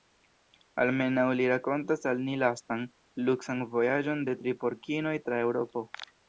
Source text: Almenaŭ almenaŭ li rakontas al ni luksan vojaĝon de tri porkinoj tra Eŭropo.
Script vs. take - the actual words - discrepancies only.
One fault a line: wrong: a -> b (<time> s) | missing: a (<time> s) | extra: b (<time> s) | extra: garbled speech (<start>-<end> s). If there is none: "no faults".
missing: almenaŭ (1.2 s)
extra: lastan (2.5 s)